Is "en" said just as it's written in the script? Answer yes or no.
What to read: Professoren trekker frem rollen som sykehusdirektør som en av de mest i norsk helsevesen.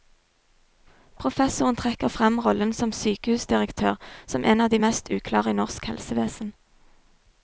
yes